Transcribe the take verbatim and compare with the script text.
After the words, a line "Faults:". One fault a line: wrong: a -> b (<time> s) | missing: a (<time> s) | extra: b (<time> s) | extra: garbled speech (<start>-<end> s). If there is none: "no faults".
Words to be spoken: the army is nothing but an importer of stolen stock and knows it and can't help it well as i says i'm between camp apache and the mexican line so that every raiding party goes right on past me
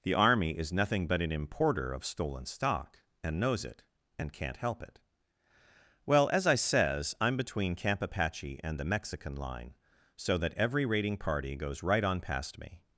the army is nothing but an importer of stolen stock and knows it and can't help it well as i says i'm between camp apache and the mexican line so that every raiding party goes right on past me
Faults:
no faults